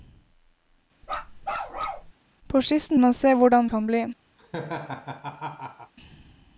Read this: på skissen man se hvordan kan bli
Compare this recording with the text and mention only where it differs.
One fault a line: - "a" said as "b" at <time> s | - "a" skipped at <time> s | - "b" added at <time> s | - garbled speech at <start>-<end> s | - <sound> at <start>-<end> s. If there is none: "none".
- bark at 1.0-2.1 s
- laugh at 4.4-5.9 s